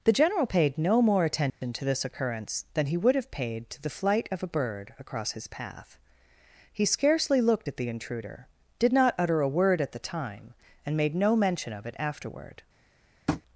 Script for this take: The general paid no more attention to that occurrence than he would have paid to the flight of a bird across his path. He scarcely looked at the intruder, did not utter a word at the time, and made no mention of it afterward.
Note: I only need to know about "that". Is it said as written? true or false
false